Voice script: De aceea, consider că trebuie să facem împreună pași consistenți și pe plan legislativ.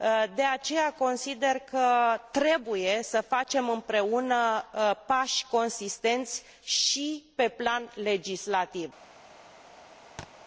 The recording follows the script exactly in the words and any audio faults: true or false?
false